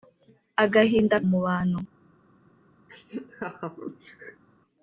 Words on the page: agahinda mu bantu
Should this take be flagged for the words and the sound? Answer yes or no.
yes